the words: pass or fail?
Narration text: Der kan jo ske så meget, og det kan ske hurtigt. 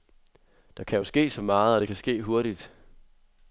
pass